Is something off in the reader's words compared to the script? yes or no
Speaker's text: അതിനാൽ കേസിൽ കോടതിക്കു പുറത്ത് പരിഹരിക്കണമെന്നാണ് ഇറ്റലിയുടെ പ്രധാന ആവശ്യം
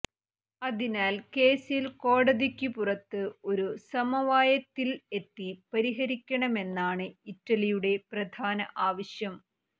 yes